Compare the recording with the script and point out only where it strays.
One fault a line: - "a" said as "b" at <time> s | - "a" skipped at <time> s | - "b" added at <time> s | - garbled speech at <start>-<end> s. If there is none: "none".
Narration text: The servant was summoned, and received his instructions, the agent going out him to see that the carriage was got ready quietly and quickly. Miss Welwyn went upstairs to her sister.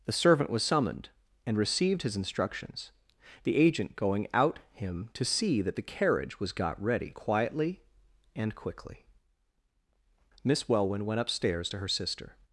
none